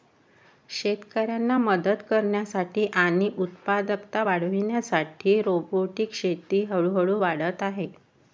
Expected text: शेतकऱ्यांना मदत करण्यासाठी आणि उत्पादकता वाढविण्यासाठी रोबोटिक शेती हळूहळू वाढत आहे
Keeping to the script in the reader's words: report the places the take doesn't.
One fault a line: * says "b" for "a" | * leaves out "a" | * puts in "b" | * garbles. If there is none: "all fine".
all fine